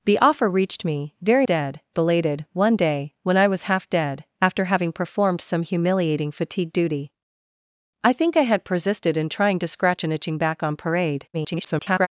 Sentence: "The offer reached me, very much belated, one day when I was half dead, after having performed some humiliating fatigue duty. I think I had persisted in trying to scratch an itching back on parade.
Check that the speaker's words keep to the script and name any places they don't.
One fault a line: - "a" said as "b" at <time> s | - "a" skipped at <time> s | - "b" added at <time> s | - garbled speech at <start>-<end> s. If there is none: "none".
- "much" said as "dead" at 1.4 s
- garbled speech at 11.3-12.1 s